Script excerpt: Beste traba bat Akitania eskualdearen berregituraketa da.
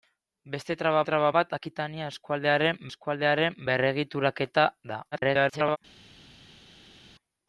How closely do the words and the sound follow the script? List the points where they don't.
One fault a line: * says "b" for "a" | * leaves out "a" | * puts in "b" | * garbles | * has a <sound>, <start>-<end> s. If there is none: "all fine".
* puts in "traba"
* puts in "eskualdearen"
* garbles